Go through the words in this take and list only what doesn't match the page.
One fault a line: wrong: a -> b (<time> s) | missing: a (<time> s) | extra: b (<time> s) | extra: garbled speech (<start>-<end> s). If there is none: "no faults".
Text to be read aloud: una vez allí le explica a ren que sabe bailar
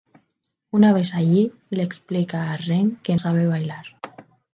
no faults